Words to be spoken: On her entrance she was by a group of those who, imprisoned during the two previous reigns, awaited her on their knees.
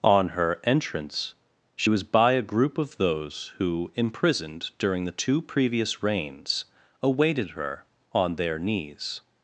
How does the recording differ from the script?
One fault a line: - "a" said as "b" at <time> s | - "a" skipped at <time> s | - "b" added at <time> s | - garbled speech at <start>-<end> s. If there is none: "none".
none